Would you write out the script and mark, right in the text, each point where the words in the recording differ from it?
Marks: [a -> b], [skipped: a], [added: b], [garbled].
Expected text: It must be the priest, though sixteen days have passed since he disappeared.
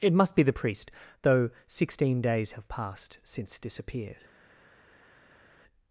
It must be the priest, though sixteen days have passed since [skipped: he] disappeared.